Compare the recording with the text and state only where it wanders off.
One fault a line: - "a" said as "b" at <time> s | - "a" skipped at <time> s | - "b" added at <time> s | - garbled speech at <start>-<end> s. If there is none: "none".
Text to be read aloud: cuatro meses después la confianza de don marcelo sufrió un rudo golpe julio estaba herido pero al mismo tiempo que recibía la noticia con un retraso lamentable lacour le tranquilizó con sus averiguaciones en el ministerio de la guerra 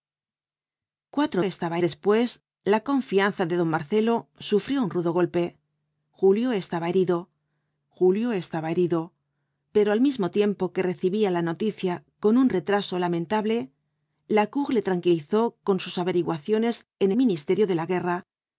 - "meses" said as "estaba" at 1.4 s
- "julio estaba herido" added at 7.9 s
- "el" skipped at 17.1 s